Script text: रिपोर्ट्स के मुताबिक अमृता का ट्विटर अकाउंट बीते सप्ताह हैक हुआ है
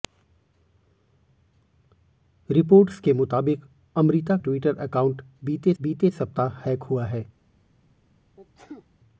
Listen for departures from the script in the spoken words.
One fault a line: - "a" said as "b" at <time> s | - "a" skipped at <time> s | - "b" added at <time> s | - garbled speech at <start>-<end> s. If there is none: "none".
- "का" skipped at 4.4 s
- "बीते" added at 5.8 s